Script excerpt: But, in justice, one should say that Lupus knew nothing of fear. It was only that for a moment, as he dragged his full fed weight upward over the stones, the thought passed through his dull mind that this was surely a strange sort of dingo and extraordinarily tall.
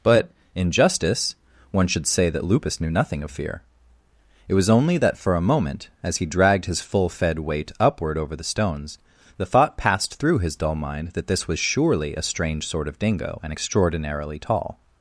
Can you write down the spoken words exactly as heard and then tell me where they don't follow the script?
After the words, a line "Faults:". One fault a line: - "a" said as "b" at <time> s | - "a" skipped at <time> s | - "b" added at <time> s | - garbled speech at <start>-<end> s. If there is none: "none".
But, in justice, one should say that Lupus knew nothing of fear. It was only that for a moment, as he dragged his full fed weight upward over the stones, the thought passed through his dull mind that this was surely a strange sort of dingo and extraordinarily tall.
Faults:
none